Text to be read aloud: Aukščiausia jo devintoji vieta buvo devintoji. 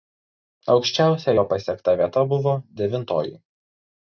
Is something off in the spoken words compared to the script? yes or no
yes